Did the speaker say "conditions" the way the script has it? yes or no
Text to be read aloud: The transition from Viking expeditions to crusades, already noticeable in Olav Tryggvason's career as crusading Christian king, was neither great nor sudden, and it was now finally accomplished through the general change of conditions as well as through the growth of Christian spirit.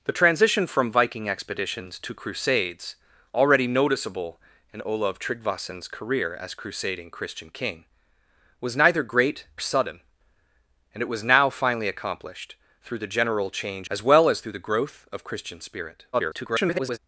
no